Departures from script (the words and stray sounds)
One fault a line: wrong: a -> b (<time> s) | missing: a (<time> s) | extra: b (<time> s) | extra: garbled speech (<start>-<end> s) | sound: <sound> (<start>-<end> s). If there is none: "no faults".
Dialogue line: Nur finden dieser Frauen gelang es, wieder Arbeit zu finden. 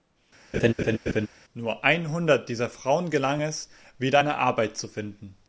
sound: laugh (0.5-1.3 s)
wrong: finden -> einhundert (1.8 s)
extra: eine (4.2 s)